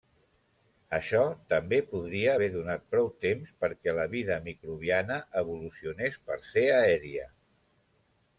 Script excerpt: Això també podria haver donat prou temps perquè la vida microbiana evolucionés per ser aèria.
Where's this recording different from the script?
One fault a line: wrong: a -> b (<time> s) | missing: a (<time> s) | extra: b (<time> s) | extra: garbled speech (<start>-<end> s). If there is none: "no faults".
no faults